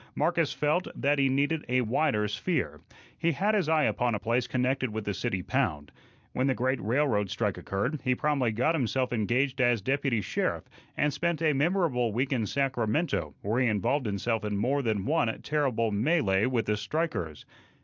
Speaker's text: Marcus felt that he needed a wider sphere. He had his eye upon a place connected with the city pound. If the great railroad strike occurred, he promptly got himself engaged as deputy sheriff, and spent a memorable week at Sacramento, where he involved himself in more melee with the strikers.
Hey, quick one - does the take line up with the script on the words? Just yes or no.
no